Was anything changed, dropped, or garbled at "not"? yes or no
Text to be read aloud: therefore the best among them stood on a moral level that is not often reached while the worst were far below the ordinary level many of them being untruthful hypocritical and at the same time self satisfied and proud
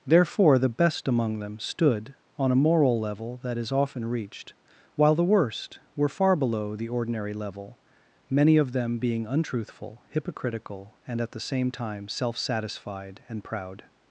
yes